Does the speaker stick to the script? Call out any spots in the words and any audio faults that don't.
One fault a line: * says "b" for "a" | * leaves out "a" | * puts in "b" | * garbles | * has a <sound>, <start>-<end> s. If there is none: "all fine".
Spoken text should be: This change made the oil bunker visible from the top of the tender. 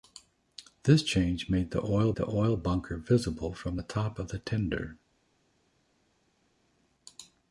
* puts in "the oil"